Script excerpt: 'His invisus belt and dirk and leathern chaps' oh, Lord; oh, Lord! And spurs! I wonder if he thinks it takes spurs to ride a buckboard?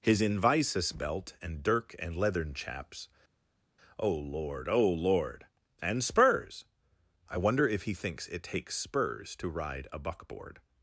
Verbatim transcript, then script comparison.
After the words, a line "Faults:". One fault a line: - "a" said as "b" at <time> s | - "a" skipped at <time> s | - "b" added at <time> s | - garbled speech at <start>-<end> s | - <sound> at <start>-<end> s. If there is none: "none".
'His invisus belt and dirk and leathern chaps' oh, Lord; oh, Lord! And spurs! I wonder if he thinks it takes spurs to ride a buckboard?
Faults:
none